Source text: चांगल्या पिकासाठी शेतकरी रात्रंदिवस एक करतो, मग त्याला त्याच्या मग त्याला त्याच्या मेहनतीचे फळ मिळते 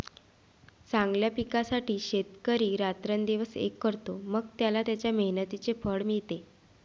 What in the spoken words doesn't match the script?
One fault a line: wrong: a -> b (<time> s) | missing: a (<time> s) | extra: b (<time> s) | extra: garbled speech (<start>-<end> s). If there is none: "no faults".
missing: मग त्याला त्याच्या (5.1 s)